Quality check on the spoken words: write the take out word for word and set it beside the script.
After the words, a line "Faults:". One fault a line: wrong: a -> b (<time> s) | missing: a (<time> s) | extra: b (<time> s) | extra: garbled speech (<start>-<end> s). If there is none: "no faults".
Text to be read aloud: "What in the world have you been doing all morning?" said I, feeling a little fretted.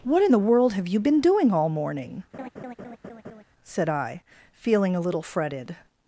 "What in the world have you been doing all morning?" said I, feeling a little fretted.
Faults:
no faults